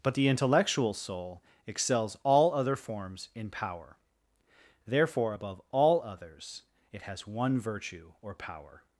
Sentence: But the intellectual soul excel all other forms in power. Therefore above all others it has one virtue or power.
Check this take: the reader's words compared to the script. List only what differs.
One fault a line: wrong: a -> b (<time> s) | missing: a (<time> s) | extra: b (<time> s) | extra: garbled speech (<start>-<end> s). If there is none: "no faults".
wrong: excel -> excels (1.7 s)